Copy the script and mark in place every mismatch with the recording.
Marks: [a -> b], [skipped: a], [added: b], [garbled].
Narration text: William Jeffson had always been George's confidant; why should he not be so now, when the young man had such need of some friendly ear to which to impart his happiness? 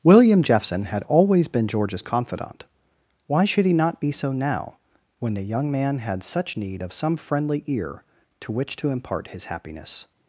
William Jeffson had always been George's confidant; why should he not be so now, when the young man had such need of some friendly ear to which to impart his happiness?